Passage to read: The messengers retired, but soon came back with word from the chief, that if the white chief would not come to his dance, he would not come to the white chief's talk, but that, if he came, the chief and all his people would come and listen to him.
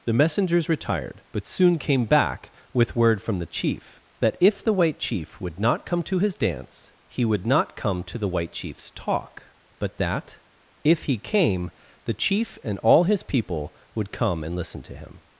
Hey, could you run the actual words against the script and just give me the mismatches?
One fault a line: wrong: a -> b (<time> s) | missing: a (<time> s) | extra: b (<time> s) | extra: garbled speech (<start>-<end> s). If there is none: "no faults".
no faults